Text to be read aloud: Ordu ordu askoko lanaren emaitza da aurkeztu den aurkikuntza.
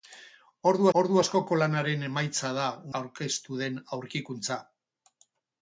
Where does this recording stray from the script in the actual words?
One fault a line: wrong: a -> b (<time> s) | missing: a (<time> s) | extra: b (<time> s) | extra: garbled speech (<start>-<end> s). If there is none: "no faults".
no faults